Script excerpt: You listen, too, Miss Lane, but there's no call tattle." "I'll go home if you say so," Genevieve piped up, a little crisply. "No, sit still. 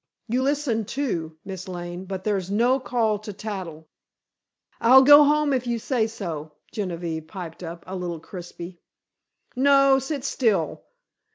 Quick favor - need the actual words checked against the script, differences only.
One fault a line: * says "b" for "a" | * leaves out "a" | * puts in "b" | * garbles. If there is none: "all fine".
* puts in "to"